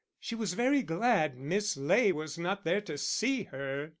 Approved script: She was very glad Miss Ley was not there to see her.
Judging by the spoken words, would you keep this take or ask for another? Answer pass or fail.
pass